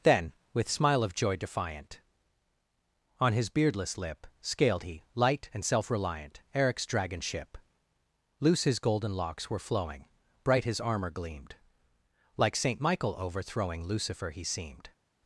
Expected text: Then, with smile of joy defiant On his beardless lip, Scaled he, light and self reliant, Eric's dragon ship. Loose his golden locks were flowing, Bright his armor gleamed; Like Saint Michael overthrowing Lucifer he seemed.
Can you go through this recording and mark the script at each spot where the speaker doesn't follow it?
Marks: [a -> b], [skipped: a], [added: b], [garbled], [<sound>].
Then, with smile of joy defiant On his beardless lip, Scaled he, light and self reliant, Eric's dragon ship. Loose his golden locks were flowing, Bright his armor gleamed; Like Saint Michael overthrowing Lucifer he seemed.